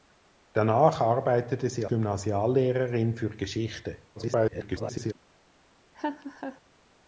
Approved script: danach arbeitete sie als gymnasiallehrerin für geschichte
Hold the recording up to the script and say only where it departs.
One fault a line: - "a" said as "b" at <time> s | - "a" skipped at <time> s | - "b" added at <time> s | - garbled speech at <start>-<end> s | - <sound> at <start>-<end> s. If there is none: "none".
- "als" skipped at 1.9 s
- garbled speech at 4.2-5.1 s
- laugh at 5.9-6.6 s